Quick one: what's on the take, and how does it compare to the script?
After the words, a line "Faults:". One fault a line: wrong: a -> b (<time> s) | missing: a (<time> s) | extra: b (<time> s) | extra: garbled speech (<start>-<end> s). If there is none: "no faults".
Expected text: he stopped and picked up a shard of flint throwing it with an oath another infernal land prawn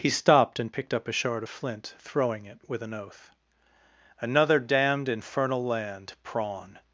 he stopped and picked up a shard of flint throwing it with an oath another damned infernal land prawn
Faults:
extra: damned (4.6 s)